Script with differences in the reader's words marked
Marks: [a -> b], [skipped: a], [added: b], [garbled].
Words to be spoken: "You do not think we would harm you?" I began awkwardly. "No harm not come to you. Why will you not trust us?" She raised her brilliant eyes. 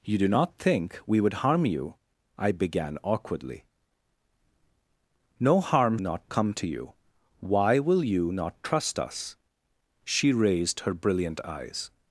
"You do not think we would harm you?" I began awkwardly. "No harm not come to you. Why will you not trust us?" She raised her brilliant eyes.